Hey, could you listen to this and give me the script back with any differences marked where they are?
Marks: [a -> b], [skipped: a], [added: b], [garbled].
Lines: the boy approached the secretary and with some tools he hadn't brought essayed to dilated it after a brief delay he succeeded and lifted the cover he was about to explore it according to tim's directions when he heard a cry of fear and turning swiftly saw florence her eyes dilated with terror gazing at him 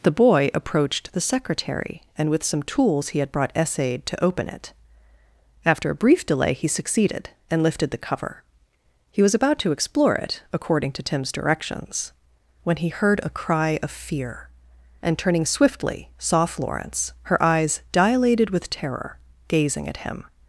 the boy approached the secretary and with some tools he [hadn't -> had] brought essayed to [dilated -> open] it after a brief delay he succeeded and lifted the cover he was about to explore it according to tim's directions when he heard a cry of fear and turning swiftly saw florence her eyes dilated with terror gazing at him